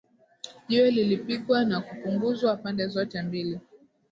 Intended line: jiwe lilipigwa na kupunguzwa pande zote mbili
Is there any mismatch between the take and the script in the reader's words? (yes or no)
no